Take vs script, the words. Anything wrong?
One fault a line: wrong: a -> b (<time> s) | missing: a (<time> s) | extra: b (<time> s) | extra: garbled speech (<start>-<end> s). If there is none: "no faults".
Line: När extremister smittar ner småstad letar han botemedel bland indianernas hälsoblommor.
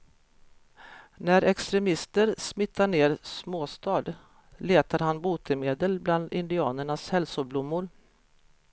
no faults